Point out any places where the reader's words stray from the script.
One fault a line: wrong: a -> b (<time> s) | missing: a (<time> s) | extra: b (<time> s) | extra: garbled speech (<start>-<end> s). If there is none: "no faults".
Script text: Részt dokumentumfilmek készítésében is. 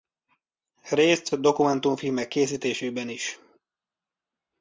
no faults